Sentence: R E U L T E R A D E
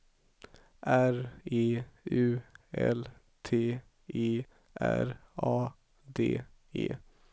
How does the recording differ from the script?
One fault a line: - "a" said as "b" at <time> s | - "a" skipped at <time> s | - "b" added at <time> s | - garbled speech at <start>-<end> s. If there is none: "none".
none